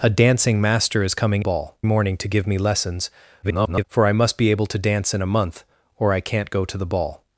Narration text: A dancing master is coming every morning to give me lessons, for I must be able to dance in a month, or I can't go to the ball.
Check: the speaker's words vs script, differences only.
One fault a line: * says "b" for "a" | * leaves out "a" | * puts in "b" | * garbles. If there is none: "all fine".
* says "ball" for "every"
* garbles